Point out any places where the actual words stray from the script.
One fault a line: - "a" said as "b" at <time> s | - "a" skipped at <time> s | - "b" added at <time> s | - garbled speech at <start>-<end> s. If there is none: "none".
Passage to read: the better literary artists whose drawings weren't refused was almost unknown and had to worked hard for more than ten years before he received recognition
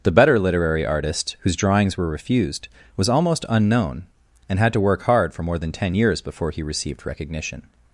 - "artists" said as "artist" at 0.8 s
- "weren't" said as "were" at 1.9 s
- "worked" said as "work" at 4.8 s